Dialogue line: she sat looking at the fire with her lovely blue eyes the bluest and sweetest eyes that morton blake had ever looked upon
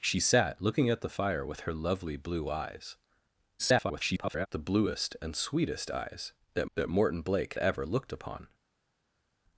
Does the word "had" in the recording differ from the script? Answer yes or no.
yes